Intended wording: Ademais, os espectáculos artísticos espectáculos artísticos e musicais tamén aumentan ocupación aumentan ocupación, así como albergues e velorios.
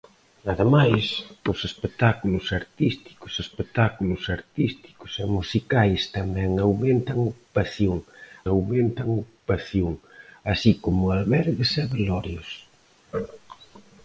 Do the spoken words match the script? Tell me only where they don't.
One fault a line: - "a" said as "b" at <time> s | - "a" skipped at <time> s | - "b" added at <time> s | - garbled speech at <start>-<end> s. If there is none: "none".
none